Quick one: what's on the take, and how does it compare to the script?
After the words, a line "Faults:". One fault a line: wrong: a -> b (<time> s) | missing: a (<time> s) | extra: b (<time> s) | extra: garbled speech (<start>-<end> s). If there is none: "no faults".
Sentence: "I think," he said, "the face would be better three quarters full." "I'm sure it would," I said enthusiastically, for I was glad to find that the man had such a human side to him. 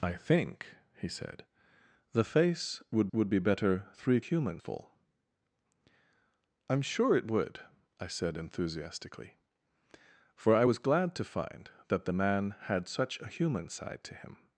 "I think," he said, "the face would would be better three human full." "I'm sure it would," I said enthusiastically, for I was glad to find that the man had such a human side to him.
Faults:
extra: would (3.1 s)
wrong: quarters -> human (4.2 s)